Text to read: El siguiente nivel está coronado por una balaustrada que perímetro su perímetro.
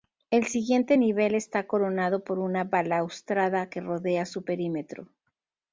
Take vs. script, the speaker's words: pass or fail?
fail